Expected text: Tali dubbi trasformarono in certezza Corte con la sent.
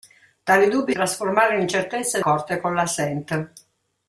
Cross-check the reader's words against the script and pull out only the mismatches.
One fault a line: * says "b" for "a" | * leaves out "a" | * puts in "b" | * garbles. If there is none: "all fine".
all fine